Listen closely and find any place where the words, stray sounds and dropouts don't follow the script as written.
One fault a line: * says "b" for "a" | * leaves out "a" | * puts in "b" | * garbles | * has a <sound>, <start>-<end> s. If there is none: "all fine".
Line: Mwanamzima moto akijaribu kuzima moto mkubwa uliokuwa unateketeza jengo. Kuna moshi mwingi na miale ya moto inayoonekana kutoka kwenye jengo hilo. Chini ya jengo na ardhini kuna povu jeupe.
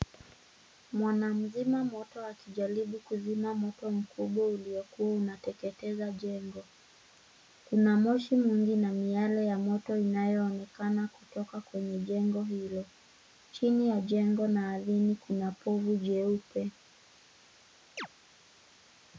* has a chirp, 18.0-18.1 s